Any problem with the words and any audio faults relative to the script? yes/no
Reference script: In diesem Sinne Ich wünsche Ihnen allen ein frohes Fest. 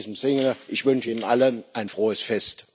no